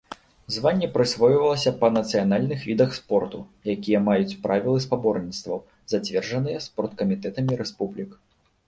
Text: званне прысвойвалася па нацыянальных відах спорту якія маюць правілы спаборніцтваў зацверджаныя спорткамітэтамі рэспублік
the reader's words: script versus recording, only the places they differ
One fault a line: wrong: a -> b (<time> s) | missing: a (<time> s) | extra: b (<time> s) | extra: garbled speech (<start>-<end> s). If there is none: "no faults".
no faults